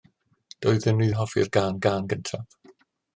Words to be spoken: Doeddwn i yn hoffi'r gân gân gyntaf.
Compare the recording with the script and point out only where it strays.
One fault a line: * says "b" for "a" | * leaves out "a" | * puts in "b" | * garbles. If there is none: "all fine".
all fine